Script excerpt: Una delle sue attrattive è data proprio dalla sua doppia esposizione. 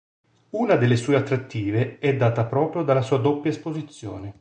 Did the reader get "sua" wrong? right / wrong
right